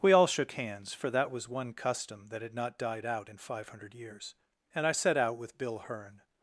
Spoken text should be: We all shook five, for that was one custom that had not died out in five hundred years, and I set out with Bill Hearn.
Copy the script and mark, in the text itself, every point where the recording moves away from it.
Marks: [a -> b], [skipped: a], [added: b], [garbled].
We all shook [five, -> hands] for that was one custom that had not died out in five hundred years, and I set out with Bill Hearn.